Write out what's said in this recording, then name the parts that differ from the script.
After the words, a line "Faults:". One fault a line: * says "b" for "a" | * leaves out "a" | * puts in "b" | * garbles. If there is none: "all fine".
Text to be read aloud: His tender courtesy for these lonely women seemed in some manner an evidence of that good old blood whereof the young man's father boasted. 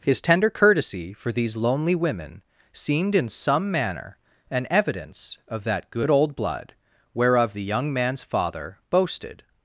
His tender courtesy for these lonely women seemed in some manner an evidence of that good old blood whereof the young man's father boasted.
Faults:
all fine